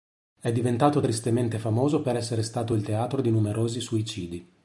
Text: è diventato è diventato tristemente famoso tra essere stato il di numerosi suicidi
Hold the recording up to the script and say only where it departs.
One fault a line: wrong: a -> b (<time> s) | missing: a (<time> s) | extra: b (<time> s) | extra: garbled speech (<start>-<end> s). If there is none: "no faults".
missing: è diventato (1.0 s)
wrong: tra -> per (2.0 s)
extra: teatro (2.8 s)